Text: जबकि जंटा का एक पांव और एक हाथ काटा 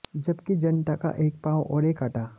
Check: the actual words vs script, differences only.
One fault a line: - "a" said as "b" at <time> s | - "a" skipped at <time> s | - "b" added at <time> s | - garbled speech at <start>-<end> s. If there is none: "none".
- "हाथ" skipped at 2.0 s